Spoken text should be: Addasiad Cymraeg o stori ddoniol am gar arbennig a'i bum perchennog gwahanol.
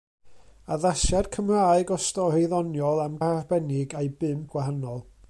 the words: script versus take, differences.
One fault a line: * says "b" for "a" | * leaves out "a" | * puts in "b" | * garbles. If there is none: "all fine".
* leaves out "gar"
* leaves out "perchennog"